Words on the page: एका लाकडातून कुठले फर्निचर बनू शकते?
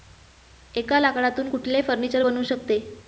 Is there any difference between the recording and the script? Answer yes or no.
no